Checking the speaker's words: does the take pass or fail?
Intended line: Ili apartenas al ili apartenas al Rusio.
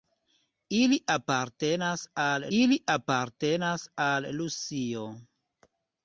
pass